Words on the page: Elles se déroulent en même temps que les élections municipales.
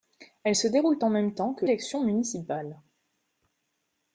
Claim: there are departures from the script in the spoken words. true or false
true